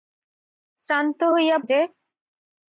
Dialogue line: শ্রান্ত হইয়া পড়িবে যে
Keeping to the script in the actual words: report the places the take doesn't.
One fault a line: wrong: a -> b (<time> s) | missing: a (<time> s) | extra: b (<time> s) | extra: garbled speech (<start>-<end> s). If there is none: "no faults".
missing: পড়িবে (1.6 s)